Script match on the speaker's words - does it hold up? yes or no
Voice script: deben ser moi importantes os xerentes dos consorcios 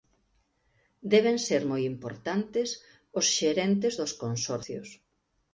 yes